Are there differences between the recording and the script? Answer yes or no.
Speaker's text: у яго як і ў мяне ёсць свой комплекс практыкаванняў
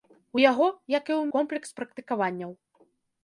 yes